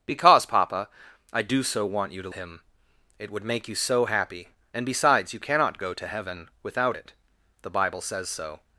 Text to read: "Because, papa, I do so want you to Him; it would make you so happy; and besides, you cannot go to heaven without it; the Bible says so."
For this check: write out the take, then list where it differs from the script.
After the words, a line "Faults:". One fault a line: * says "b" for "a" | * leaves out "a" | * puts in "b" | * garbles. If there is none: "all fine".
"Because, papa, I do so want you to Him; it would make you so happy; and besides, you cannot go to heaven without it; the Bible says so."
Faults:
all fine